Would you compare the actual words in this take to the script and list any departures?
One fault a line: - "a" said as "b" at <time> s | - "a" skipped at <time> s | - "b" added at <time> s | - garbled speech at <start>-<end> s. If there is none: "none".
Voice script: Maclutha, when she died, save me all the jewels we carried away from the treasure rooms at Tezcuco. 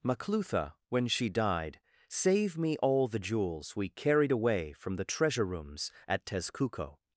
none